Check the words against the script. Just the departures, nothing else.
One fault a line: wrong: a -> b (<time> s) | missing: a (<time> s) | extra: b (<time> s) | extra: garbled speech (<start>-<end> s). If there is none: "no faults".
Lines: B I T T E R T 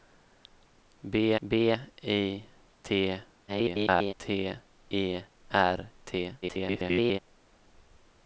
extra: b (1.5 s)
extra: garbled speech (3.5-4.1 s)
extra: garbled speech (6.4-7.2 s)